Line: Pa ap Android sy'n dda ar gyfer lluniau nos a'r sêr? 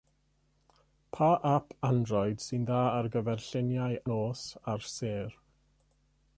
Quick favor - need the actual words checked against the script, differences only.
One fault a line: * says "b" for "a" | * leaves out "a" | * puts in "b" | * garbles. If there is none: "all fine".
all fine